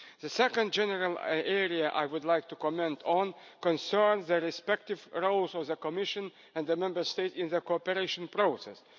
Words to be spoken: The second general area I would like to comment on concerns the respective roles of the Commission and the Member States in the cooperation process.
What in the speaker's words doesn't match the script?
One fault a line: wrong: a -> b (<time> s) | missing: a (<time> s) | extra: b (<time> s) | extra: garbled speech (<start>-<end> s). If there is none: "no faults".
no faults